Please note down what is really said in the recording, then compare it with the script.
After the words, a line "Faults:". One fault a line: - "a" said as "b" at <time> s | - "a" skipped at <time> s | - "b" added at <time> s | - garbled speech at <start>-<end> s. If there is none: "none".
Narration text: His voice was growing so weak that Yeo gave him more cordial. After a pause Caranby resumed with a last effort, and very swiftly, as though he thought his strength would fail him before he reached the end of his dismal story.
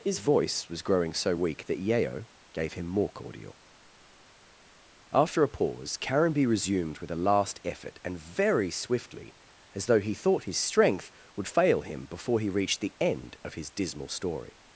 His voice was growing so weak that Yeo gave him more cordial. After a pause Caranby resumed with a last effort, and very swiftly, as though he thought his strength would fail him before he reached the end of his dismal story.
Faults:
none